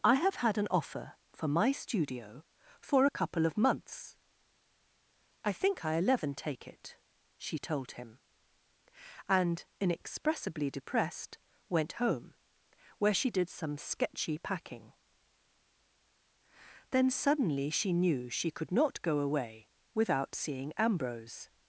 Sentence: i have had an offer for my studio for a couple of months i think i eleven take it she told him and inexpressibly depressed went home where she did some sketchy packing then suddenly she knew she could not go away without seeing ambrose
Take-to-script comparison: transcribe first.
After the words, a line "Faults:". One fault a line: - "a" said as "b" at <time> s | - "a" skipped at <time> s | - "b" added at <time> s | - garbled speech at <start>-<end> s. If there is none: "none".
i have had an offer for my studio for a couple of months i think i eleven take it she told him and inexpressibly depressed went home where she did some sketchy packing then suddenly she knew she could not go away without seeing ambrose
Faults:
none